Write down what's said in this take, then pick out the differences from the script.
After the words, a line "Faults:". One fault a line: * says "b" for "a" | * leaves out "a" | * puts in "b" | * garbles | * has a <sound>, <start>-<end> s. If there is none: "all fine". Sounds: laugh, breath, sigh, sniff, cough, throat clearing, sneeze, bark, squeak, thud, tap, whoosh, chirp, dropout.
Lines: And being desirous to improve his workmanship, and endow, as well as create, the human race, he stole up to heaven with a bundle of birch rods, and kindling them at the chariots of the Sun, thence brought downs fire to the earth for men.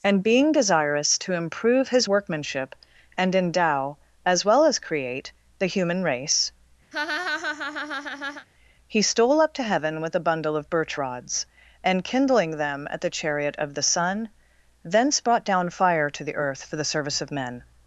And being desirous to improve his workmanship, and endow, as well as create, the human race, he stole up to heaven with a bundle of birch rods, and kindling them at the chariot of the Sun, thence brought down fire to the earth for the service of men.
Faults:
* has a laugh, 6.9-8.5 s
* says "chariot" for "chariots"
* says "down" for "downs"
* puts in "the service of"